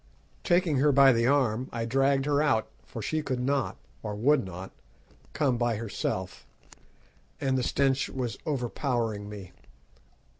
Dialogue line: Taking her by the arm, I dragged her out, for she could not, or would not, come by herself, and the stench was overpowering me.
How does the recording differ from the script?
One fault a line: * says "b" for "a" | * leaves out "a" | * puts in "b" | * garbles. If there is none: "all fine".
all fine